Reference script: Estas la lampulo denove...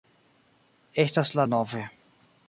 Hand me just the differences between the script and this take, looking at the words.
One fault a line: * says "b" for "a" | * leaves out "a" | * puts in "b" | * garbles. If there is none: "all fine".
* leaves out "lampulo"